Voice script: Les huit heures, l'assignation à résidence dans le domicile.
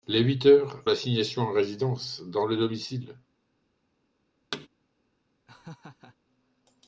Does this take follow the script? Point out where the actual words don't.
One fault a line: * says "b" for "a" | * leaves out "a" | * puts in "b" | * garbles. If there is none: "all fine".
all fine